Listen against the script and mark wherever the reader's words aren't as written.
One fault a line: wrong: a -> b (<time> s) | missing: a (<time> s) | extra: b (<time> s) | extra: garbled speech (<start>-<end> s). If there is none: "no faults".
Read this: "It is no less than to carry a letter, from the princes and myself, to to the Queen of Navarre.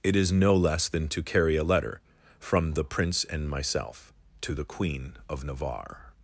wrong: princes -> prince (2.8 s)
missing: to (4.5 s)